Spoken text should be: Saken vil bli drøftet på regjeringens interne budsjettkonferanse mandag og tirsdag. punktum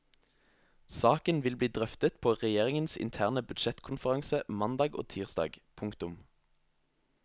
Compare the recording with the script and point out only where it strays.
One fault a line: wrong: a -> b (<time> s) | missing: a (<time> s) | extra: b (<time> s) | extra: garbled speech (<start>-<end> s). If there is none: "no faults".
no faults